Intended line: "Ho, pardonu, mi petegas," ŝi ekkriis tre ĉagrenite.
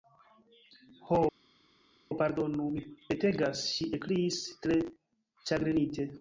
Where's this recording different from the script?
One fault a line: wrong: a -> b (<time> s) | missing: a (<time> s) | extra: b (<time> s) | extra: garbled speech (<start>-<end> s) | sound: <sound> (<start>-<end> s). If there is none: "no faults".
no faults